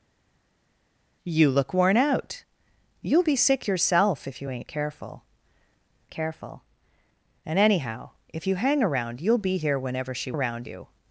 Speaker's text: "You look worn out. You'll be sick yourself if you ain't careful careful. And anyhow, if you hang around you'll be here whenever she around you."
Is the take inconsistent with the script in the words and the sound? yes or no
no